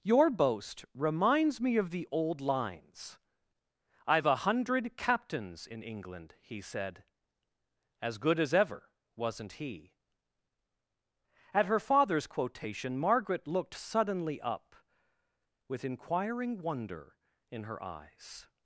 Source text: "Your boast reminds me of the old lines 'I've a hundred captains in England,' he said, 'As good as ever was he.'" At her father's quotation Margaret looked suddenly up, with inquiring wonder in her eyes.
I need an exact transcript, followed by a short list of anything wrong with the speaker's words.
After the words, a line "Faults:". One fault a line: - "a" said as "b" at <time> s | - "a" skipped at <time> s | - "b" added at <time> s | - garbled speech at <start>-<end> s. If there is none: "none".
"Your boast reminds me of the old lines 'I've a hundred captains in England,' he said, 'As good as ever wasn't he.'" At her father's quotation Margaret looked suddenly up, with inquiring wonder in her eyes.
Faults:
- "was" said as "wasn't" at 9.2 s